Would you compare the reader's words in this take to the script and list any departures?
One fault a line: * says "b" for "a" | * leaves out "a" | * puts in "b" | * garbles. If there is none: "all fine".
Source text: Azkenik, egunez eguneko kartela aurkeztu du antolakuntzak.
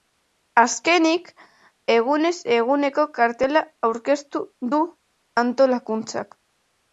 all fine